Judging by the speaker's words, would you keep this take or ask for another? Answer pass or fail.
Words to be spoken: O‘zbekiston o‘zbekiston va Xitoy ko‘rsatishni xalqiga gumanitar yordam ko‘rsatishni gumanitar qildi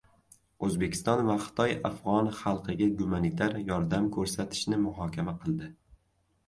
fail